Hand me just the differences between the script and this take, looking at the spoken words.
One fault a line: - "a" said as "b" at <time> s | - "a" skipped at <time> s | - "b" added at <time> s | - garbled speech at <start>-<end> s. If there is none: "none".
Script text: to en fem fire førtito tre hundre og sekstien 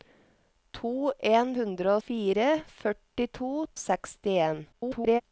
- "fem" said as "hundre" at 1.6 s
- "tre hundre" skipped at 3.5 s
- garbled speech at 4.7-5.2 s